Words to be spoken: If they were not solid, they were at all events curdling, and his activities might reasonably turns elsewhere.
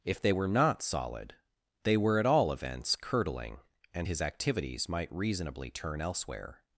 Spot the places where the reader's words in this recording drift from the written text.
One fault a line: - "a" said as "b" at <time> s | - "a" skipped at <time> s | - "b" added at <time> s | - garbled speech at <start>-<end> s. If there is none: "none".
- "turns" said as "turn" at 5.7 s